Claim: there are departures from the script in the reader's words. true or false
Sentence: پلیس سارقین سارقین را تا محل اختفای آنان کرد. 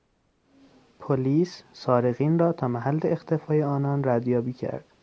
true